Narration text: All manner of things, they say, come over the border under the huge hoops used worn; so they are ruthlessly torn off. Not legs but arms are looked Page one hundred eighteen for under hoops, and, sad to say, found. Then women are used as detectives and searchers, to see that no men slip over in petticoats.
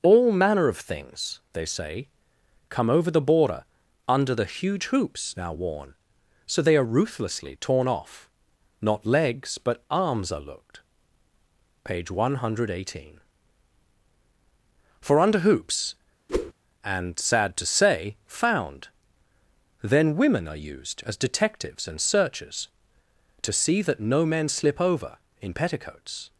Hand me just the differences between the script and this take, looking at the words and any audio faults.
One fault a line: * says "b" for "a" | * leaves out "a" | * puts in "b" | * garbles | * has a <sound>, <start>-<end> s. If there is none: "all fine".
* says "now" for "used"
* has a whoosh, 16.3-16.5 s